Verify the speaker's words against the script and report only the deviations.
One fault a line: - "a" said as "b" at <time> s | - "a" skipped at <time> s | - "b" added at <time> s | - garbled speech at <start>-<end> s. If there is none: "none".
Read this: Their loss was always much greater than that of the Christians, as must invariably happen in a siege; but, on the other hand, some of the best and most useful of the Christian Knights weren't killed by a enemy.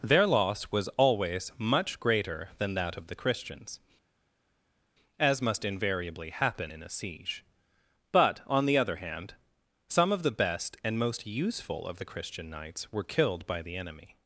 - "weren't" said as "were" at 12.9 s
- "a" said as "the" at 13.6 s